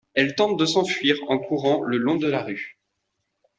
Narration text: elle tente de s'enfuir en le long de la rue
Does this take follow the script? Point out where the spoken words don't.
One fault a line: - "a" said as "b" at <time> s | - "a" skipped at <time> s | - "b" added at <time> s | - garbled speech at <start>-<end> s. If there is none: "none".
- "courant" added at 1.4 s